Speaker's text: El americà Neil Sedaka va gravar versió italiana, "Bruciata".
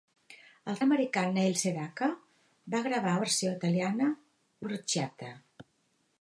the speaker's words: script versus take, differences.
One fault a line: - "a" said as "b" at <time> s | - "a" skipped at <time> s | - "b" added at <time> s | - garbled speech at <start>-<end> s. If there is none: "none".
none